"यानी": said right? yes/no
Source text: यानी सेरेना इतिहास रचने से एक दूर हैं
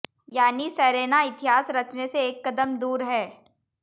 yes